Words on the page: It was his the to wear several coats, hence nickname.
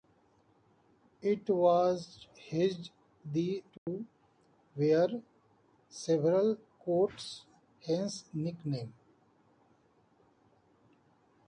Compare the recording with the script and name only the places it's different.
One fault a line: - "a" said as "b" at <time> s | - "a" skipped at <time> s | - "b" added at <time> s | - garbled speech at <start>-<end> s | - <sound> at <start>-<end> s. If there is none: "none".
- dropout at 3.8-3.9 s